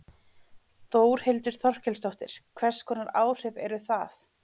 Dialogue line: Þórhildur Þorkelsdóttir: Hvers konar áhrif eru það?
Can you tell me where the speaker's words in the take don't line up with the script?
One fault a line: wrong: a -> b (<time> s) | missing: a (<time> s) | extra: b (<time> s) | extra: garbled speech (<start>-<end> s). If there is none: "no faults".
no faults